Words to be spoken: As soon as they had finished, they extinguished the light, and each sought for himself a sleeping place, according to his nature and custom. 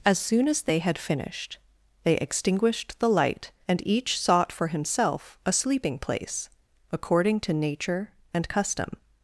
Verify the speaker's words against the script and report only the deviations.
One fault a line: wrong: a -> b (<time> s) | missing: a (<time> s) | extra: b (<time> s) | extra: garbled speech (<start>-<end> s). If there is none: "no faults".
missing: his (7.5 s)